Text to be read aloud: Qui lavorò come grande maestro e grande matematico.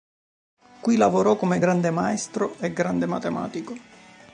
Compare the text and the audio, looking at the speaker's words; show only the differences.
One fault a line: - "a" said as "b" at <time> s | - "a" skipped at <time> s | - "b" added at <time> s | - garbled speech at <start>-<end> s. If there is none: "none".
none